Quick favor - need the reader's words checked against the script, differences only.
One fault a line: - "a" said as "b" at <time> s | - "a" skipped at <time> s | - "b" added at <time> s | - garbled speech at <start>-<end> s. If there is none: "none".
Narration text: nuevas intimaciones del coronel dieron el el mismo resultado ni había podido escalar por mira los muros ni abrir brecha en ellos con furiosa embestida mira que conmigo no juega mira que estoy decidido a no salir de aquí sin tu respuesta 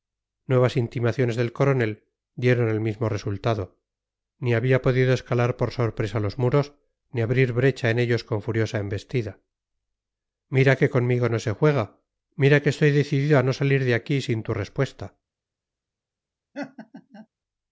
- "el" skipped at 2.8 s
- "mira" said as "sorpresa" at 5.7 s
- "se" added at 11.4 s